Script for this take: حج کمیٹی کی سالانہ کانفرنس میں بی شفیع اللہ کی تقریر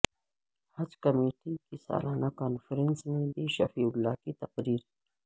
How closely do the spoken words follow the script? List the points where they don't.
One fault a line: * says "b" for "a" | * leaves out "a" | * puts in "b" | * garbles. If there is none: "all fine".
all fine